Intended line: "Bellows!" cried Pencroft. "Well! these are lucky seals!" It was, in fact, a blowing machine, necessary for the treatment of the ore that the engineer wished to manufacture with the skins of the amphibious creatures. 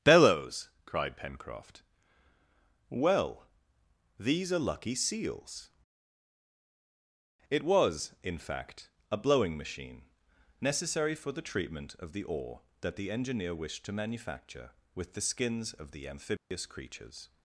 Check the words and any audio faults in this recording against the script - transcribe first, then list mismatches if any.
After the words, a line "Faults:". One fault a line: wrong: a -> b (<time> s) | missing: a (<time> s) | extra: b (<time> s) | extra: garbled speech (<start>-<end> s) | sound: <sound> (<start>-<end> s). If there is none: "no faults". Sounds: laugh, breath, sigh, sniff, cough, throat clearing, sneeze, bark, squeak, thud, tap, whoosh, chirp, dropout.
"Bellows!" cried Pencroft. "Well! these are lucky seals!" It was, in fact, a blowing machine, necessary for the treatment of the ore that the engineer wished to manufacture with the skins of the amphibious creatures.
Faults:
sound: dropout (16.4-16.5 s)